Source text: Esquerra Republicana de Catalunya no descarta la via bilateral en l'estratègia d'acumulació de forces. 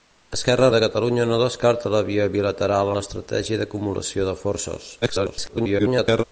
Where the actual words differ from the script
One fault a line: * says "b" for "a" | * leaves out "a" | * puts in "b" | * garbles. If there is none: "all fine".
* leaves out "Republicana"
* leaves out "en"
* garbles